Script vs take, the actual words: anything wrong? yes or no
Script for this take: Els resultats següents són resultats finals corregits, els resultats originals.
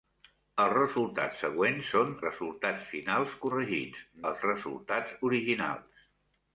no